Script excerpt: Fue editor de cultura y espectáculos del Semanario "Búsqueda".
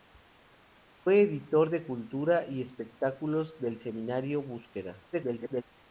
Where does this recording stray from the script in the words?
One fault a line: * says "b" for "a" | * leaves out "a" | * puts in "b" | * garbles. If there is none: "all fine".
* garbles